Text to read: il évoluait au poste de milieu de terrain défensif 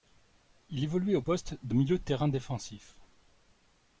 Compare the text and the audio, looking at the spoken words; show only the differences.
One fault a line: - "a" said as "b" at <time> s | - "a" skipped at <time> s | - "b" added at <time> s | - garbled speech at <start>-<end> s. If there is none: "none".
none